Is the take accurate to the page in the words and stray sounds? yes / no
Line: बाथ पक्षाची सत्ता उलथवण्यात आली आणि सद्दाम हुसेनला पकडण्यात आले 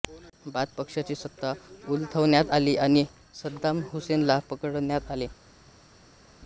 yes